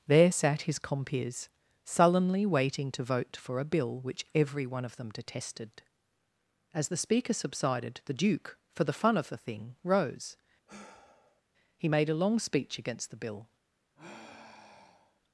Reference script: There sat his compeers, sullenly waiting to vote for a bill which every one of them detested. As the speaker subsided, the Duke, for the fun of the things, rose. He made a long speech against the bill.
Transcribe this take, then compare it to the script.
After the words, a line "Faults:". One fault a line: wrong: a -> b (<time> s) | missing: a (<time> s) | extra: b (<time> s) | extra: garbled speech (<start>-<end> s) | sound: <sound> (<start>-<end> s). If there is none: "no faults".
There sat his compeers, sullenly waiting to vote for a bill which every one of them detested. As the speaker subsided, the Duke, for the fun of the thing, rose. He made a long speech against the bill.
Faults:
wrong: things -> thing (9.4 s)
sound: sigh (10.7-11.4 s)
sound: sigh (14.0-15.2 s)